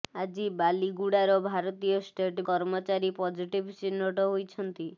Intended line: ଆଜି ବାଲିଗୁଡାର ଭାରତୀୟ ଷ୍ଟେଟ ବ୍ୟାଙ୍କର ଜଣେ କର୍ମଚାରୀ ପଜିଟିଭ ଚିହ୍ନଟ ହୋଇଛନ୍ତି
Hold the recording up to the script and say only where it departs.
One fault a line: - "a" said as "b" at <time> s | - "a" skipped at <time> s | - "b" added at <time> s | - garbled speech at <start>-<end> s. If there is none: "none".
- "ବ୍ୟାଙ୍କର ଜଣେ" skipped at 2.5 s